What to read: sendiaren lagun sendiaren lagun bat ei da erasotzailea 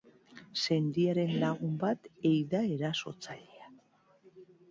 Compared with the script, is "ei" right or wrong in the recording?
right